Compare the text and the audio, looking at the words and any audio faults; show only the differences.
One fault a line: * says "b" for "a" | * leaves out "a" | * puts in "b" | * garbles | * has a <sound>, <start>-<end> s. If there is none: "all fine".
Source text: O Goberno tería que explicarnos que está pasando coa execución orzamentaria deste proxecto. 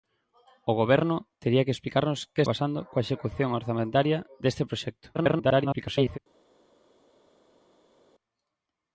* leaves out "está"
* garbles